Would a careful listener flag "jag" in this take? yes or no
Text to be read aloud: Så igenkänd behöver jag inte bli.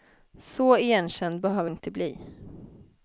yes